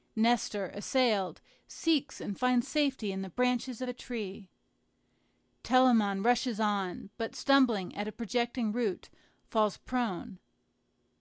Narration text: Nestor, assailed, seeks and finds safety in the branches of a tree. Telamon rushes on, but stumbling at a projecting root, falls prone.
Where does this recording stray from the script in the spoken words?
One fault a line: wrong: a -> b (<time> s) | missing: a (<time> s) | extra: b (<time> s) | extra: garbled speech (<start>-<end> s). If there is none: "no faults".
missing: of (3.8 s)